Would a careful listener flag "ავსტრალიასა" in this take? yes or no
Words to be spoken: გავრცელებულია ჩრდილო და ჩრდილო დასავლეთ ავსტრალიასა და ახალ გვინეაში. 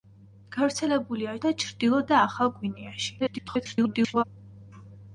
yes